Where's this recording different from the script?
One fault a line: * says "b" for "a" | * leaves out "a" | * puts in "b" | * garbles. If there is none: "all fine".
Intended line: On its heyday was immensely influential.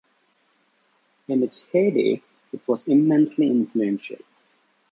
* says "In" for "On"
* puts in "it"